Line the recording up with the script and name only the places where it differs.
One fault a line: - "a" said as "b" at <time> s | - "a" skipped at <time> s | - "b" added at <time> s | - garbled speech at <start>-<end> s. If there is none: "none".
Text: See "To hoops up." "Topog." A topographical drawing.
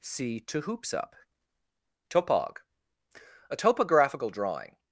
none